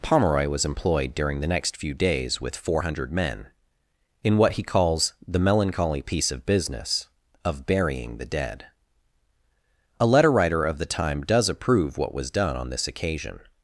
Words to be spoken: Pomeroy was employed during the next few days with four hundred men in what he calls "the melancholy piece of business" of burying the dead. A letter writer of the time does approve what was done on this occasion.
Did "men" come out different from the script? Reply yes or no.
no